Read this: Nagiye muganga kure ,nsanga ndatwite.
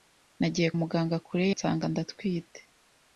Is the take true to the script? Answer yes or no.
yes